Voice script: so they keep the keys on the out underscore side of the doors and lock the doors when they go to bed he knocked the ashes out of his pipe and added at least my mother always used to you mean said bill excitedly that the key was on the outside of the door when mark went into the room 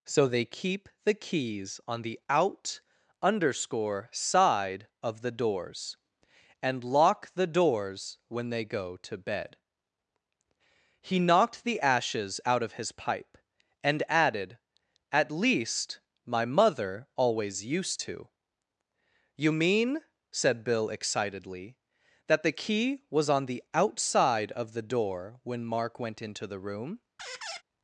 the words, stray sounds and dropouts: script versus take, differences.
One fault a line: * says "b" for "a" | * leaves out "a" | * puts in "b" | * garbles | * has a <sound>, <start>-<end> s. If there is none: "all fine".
* has a squeak, 27.2-27.6 s